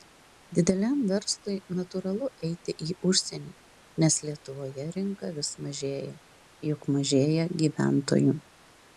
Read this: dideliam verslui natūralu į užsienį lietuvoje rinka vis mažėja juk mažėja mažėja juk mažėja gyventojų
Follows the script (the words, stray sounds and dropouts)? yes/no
no